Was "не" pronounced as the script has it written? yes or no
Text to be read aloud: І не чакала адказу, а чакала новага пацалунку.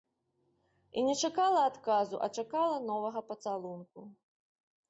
yes